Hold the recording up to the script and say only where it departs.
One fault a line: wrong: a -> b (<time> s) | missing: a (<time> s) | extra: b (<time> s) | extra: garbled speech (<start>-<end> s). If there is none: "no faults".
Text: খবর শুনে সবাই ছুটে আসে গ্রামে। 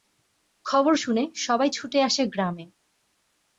no faults